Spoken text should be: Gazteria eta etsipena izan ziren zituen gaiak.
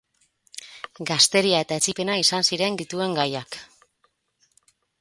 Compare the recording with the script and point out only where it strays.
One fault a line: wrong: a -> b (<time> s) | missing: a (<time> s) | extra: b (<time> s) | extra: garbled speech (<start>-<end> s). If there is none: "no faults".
no faults